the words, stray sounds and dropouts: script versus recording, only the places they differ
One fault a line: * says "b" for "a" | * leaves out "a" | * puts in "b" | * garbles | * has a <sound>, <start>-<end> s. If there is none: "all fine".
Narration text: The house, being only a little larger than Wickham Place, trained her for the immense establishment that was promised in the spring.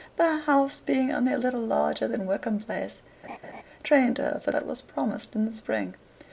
* has a laugh, 3.2-3.6 s
* leaves out "the immense establishment"